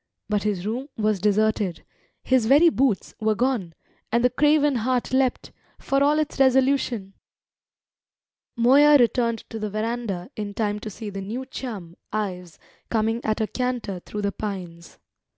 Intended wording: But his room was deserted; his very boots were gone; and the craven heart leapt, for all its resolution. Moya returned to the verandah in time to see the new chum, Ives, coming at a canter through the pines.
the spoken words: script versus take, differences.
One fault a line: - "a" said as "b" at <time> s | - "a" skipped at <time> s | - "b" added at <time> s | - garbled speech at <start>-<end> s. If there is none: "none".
none